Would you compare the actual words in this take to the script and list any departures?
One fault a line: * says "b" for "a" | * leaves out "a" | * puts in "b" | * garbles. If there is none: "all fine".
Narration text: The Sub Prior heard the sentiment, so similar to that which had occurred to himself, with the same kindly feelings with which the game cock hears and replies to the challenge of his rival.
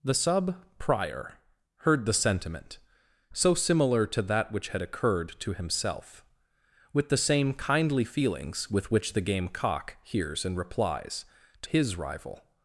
* leaves out "the challenge of"